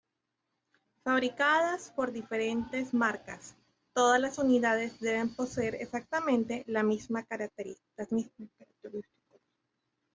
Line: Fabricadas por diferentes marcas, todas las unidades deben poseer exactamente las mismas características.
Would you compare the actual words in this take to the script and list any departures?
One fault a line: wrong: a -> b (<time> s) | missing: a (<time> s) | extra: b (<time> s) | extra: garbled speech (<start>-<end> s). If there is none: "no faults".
no faults